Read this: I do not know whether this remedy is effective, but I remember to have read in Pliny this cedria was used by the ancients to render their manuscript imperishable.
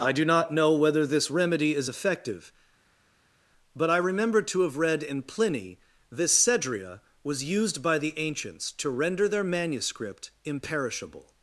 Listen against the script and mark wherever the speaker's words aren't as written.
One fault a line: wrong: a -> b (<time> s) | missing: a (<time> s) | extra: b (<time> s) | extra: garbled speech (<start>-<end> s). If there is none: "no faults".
no faults